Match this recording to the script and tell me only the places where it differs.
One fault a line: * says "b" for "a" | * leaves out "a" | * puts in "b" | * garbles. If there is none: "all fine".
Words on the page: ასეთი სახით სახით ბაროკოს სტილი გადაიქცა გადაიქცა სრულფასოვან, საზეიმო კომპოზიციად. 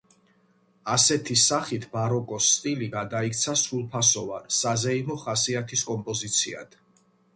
* leaves out "სახით"
* leaves out "გადაიქცა"
* puts in "ხასიათის"